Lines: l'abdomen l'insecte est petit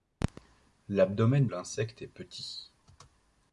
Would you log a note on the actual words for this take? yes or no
no